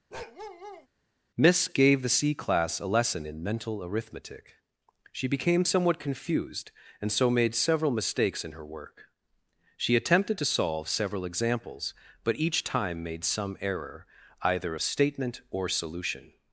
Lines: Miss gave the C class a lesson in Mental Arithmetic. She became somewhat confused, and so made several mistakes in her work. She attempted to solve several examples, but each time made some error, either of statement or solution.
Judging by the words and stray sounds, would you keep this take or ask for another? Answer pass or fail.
fail